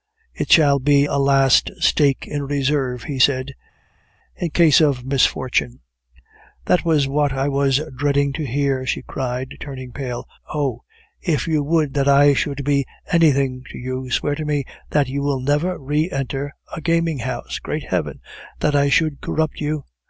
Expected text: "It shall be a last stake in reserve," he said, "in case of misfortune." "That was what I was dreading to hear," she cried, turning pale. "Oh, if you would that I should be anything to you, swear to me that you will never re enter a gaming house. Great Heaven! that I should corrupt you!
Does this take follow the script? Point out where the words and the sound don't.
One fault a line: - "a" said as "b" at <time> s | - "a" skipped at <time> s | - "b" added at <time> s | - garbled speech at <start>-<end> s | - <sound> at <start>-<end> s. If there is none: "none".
none